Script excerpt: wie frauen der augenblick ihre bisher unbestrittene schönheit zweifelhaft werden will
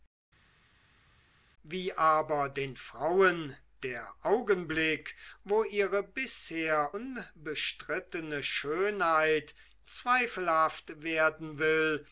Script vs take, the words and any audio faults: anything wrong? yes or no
yes